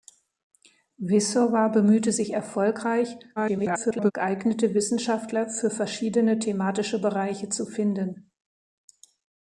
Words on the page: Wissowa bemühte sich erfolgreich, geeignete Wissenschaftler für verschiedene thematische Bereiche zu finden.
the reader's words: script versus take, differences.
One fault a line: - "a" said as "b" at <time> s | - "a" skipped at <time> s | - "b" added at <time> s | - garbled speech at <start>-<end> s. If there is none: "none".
- garbled speech at 3.4-4.1 s